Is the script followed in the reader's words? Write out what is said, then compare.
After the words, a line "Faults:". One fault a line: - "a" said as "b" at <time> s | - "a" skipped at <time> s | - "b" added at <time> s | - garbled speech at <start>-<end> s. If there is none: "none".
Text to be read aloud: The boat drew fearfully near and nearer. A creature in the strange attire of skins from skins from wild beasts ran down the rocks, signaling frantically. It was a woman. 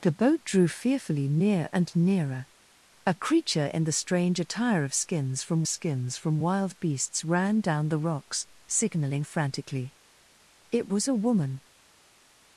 The boat drew fearfully near and nearer. A creature in the strange attire of skins from skins from wild beasts ran down the rocks, signaling frantically. It was a woman.
Faults:
none